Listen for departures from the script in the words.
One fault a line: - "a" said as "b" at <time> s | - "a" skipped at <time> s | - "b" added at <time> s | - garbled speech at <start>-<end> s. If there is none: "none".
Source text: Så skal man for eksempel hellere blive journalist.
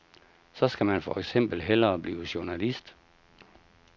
none